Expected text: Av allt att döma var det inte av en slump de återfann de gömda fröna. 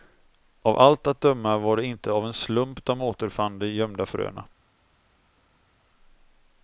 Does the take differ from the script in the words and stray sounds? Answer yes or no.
no